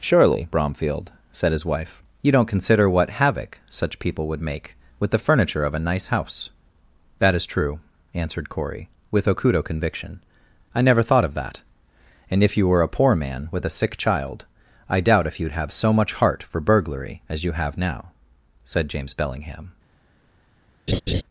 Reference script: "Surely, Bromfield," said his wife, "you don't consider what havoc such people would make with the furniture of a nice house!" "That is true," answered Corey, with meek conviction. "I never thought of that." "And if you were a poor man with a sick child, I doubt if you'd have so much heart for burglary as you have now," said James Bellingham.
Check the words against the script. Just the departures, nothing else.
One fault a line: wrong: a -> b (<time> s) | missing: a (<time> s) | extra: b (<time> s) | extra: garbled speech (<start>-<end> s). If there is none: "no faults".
wrong: meek -> okudo (9.3 s)